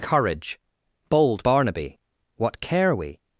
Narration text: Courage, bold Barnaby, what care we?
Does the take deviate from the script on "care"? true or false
false